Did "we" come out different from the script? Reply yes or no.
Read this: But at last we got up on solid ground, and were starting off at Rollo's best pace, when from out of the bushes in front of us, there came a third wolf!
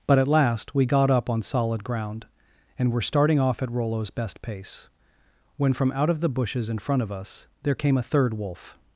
no